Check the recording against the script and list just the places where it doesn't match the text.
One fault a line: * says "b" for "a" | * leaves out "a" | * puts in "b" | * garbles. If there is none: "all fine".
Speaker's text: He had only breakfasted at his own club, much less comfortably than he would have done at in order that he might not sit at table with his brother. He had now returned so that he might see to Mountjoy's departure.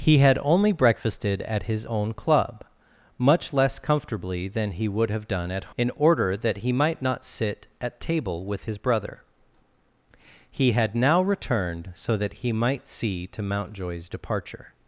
all fine